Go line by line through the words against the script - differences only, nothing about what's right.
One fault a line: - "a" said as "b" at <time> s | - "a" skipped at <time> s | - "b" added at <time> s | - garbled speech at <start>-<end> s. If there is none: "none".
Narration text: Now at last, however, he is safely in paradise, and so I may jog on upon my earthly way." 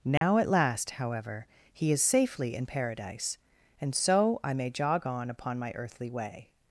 none